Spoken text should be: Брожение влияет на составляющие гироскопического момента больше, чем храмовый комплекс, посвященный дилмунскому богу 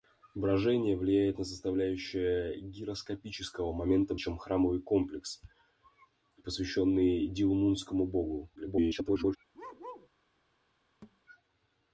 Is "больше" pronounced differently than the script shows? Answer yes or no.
yes